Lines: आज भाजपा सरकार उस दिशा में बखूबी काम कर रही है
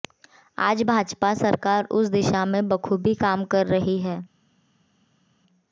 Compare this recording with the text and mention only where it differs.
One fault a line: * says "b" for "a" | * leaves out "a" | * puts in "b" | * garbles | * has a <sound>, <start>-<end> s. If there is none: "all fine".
all fine